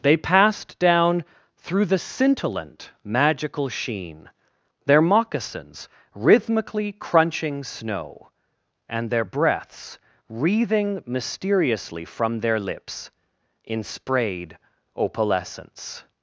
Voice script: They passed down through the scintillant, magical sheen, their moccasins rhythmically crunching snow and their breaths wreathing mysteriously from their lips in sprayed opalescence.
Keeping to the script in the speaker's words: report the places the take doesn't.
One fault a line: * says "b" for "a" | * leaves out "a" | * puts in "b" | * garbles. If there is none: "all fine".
all fine